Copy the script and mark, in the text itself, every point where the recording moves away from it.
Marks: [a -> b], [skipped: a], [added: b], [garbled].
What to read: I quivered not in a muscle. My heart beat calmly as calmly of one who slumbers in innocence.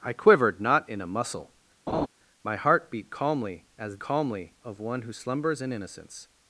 I quivered not in a muscle. My heart beat calmly as calmly of one who slumbers in innocence.